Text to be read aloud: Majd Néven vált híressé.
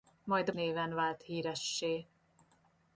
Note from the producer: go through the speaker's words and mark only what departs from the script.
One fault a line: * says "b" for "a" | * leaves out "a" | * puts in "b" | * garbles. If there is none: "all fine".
all fine